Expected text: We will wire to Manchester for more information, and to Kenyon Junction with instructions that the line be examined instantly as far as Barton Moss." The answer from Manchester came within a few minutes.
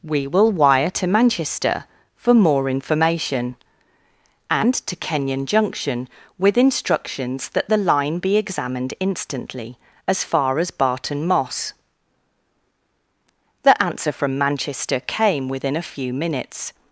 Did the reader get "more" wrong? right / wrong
right